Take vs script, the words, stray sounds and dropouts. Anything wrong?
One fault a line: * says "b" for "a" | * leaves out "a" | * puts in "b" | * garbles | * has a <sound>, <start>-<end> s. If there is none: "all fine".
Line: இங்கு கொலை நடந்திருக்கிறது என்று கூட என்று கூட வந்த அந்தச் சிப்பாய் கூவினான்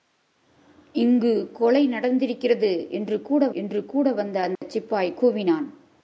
* has a dropout, 4.6-4.6 s